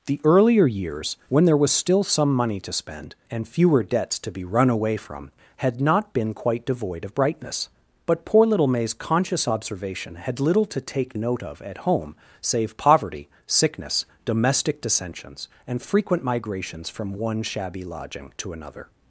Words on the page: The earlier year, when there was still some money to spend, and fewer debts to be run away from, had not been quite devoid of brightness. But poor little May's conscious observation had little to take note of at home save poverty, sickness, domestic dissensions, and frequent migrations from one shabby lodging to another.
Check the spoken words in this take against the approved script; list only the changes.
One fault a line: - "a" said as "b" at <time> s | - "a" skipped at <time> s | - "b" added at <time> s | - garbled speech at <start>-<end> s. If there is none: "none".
- "year" said as "years" at 0.7 s